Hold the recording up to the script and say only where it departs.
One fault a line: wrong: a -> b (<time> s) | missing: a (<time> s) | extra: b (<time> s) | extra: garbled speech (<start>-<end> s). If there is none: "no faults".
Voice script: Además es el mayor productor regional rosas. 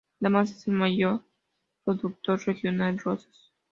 no faults